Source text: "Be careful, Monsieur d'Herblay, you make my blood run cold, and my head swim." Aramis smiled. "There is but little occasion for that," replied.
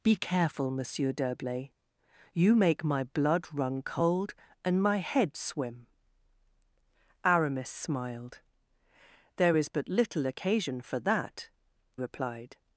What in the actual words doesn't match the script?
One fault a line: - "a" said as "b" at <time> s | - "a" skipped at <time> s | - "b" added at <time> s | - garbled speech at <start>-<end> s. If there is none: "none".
none